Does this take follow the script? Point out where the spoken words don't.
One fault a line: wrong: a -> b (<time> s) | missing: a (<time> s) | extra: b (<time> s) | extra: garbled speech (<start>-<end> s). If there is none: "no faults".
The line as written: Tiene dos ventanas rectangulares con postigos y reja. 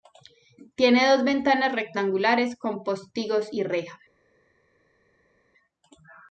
no faults